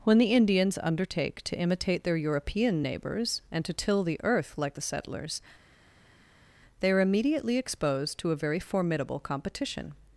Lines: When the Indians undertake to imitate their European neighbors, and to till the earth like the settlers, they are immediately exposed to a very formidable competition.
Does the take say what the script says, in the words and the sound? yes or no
yes